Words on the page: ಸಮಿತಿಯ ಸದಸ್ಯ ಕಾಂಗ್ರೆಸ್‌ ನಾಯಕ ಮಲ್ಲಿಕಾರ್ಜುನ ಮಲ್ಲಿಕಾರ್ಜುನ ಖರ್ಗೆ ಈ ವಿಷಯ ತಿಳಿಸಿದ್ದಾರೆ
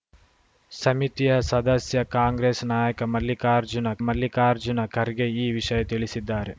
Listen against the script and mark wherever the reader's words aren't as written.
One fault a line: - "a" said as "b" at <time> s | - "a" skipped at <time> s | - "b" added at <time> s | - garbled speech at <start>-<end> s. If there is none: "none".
none